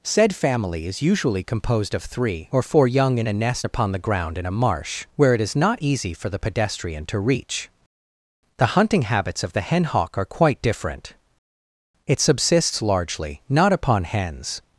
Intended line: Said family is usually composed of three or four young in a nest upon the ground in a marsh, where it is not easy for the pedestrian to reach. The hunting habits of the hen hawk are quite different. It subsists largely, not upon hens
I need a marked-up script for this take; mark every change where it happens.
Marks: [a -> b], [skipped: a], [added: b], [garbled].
Said family is usually composed of three or four young in a nest upon the ground in a marsh, where it is not easy for the pedestrian to reach. The hunting habits of the hen hawk are quite different. It subsists largely, not upon hens